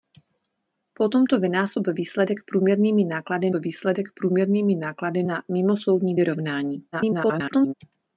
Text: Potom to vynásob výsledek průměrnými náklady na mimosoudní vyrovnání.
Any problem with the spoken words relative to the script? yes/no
yes